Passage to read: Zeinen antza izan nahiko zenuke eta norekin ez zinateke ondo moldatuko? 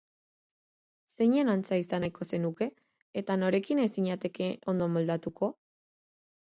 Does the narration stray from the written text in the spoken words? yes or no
no